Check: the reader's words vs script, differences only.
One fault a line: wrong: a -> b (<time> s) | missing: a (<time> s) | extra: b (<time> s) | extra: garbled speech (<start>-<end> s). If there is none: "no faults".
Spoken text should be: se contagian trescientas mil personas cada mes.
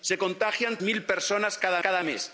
missing: trescientas (0.8 s)
extra: cada (1.8 s)